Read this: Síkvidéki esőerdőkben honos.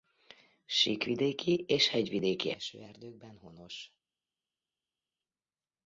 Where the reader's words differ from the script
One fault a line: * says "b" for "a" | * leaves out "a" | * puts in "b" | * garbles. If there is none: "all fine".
* puts in "és hegyvidéki"